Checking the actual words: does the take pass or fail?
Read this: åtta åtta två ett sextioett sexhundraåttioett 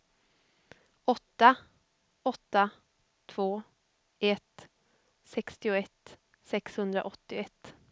pass